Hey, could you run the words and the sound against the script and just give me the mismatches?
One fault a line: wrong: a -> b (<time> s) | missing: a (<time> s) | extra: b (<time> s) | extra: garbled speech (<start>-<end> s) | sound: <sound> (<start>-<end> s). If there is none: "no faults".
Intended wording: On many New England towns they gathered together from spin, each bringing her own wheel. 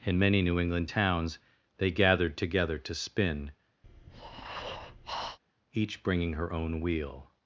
wrong: On -> In (0.0 s)
wrong: from -> to (2.8 s)
sound: breath (3.8-5.4 s)